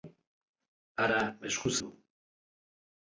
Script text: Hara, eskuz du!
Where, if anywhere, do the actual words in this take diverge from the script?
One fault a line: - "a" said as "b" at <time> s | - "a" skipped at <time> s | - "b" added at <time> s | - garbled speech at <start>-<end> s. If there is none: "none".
none